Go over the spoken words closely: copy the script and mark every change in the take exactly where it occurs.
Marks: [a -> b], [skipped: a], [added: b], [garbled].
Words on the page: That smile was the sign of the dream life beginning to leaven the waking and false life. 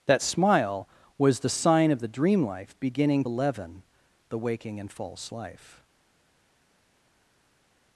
That smile was the sign of the dream life beginning [skipped: to] leaven the waking and false life.